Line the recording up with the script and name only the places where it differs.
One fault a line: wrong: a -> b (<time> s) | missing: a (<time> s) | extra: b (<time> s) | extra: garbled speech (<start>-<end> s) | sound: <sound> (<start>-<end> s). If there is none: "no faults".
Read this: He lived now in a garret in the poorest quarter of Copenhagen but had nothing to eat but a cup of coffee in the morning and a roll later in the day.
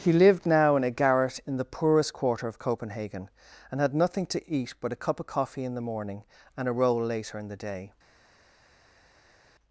wrong: but -> and (3.7 s)